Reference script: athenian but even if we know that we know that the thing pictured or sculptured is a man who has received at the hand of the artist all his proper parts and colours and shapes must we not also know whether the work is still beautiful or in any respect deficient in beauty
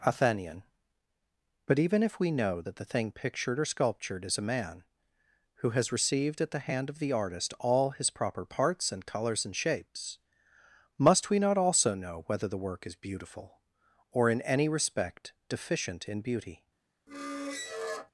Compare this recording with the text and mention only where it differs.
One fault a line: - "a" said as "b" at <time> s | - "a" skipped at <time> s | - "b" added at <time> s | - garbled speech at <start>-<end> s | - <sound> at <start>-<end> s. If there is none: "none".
- "we know that" skipped at 2.8 s
- "still" skipped at 12.9 s
- squeak at 17.1-18.1 s